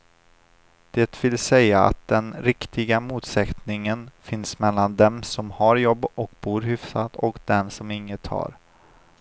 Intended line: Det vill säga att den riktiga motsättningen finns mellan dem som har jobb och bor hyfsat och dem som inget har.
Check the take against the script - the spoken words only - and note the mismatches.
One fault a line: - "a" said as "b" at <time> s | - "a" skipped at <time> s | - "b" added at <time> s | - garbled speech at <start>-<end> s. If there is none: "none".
none